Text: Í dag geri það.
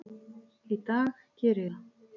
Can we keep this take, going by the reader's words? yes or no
yes